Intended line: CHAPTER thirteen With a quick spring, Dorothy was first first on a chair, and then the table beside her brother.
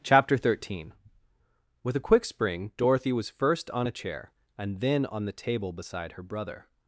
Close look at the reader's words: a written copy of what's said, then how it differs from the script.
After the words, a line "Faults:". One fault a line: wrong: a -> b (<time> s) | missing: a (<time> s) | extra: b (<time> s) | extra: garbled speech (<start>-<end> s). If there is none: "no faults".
CHAPTER thirteen With a quick spring, Dorothy was first on a chair, and then on the table beside her brother.
Faults:
missing: first (3.7 s)
extra: on (5.1 s)